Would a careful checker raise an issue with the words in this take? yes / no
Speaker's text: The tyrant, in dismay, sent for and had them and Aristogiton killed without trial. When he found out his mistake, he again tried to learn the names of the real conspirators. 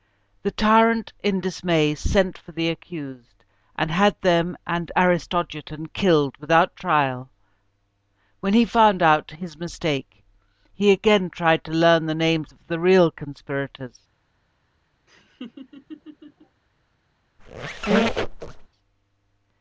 yes